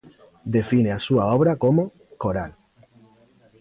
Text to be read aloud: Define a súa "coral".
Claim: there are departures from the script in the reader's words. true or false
true